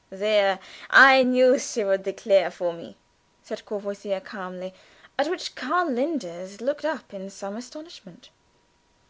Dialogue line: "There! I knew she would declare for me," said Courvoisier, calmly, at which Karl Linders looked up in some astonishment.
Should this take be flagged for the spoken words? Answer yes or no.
no